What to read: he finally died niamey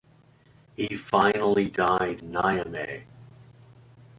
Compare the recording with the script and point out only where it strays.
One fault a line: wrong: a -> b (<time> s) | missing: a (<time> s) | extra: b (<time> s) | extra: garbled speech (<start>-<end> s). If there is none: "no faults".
no faults